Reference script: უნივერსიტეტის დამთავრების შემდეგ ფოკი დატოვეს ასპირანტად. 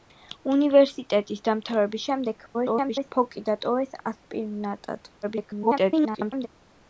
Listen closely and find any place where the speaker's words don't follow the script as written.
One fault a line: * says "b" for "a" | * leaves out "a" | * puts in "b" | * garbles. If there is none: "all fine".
* garbles
* garbles